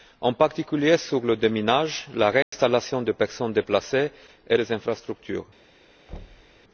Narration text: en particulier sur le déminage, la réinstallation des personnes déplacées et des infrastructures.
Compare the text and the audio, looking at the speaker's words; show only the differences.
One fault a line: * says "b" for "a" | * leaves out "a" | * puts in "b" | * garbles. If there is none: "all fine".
all fine